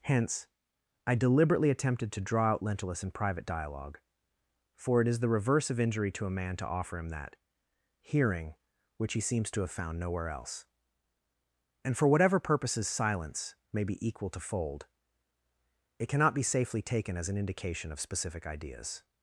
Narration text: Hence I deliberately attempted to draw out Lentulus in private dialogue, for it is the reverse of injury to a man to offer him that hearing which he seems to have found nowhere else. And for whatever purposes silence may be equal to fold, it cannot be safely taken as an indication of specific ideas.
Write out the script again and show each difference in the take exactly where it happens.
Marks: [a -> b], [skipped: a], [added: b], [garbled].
Hence I deliberately attempted to draw out Lentulus in private dialogue, for it is the reverse of injury to a man to offer him that hearing which he seems to have found nowhere else. And for whatever purposes silence may be equal to fold, it cannot be safely taken as an indication of specific ideas.